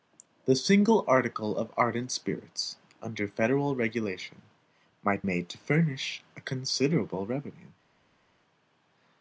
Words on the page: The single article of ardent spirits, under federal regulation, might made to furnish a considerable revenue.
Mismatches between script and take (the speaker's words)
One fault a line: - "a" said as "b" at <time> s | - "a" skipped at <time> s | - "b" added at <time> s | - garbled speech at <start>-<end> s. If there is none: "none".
none